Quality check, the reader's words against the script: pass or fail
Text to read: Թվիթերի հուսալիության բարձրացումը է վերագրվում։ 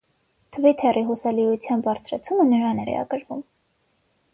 fail